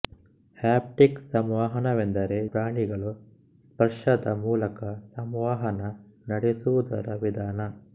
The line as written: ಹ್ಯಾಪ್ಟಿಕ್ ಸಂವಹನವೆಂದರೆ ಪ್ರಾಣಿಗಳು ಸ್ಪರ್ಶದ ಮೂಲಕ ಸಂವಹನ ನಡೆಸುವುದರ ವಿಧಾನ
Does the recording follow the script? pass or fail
pass